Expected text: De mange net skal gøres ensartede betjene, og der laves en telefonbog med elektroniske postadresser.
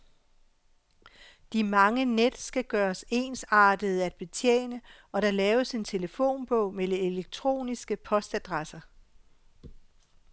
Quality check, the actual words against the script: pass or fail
fail